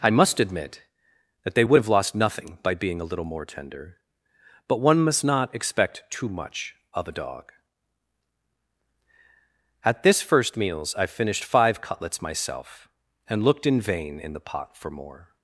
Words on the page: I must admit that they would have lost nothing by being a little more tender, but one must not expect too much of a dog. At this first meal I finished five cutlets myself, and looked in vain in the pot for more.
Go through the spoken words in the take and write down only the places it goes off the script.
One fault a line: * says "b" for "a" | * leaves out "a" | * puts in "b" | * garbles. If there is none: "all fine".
* says "meals" for "meal"